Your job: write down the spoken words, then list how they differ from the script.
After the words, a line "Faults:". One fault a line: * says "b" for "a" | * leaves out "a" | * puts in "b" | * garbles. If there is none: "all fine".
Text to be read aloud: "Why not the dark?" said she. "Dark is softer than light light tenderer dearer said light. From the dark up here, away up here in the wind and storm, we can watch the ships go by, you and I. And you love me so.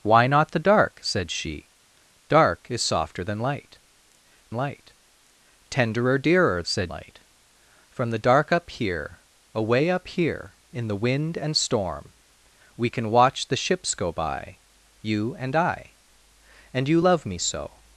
"Why not the dark?" said she. "Dark is softer than light light tenderer dearer said light. From the dark up here, away up here in the wind and storm, we can watch the ships go by, you and I. And you love me so.
Faults:
all fine